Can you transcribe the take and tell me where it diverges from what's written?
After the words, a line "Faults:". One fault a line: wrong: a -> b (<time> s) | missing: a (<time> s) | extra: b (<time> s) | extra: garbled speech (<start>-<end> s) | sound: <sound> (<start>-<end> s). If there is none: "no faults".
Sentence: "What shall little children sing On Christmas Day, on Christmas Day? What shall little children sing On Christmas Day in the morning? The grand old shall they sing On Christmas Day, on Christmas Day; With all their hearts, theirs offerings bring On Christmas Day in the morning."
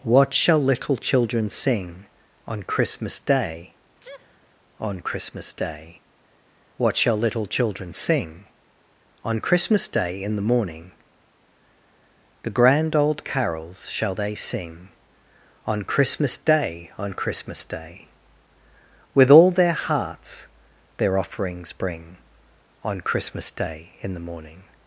"What shall little children sing On Christmas Day, on Christmas Day? What shall little children sing On Christmas Day in the morning? The grand old carols shall they sing On Christmas Day, on Christmas Day; With all their hearts, their offerings bring On Christmas Day in the morning."
Faults:
sound: sneeze (4.0-4.5 s)
extra: carols (13.2 s)
wrong: theirs -> their (21.0 s)